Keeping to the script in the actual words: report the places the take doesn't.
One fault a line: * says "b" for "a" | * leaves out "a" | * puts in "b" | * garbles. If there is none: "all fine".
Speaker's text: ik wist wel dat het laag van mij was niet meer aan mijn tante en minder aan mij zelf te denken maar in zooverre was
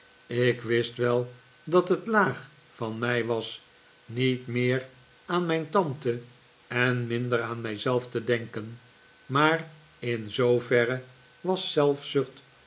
all fine